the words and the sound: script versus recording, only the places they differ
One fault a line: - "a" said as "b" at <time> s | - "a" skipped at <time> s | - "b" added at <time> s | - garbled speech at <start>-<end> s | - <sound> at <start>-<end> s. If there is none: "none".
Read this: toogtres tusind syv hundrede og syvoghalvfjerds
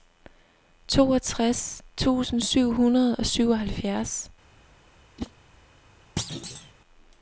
- whoosh at 5.2-5.3 s
- thud at 6.2-6.7 s